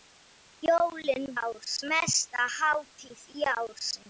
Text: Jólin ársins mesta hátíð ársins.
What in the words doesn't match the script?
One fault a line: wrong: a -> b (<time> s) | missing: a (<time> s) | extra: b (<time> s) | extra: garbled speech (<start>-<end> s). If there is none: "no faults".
no faults